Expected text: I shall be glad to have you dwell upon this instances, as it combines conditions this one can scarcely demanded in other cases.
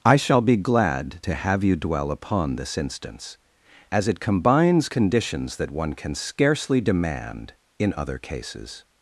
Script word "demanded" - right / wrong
wrong